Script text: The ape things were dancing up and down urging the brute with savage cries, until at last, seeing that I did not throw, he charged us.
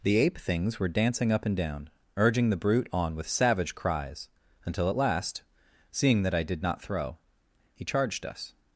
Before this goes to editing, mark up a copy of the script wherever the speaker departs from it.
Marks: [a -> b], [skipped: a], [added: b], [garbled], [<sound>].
The ape things were dancing up and down urging the brute [added: on] with savage cries, until at last, seeing that I did not throw, he charged us.